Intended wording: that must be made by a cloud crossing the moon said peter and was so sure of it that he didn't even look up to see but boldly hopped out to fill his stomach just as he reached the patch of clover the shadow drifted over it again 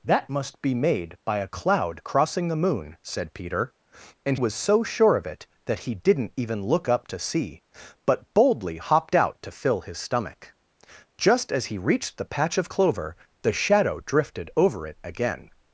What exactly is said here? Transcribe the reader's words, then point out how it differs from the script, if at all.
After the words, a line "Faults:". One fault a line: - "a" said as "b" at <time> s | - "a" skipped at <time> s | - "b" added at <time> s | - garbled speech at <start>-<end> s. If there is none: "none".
that must be made by a cloud crossing the moon said peter and was so sure of it that he didn't even look up to see but boldly hopped out to fill his stomach just as he reached the patch of clover the shadow drifted over it again
Faults:
none